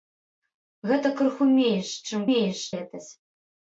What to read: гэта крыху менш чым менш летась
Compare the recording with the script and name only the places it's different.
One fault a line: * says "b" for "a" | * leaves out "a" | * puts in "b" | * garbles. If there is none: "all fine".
all fine